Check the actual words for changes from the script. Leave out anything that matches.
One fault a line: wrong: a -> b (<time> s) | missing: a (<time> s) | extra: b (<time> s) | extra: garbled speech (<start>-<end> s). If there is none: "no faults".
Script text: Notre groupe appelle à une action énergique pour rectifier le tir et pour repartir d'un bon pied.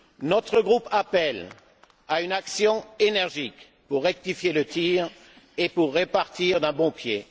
no faults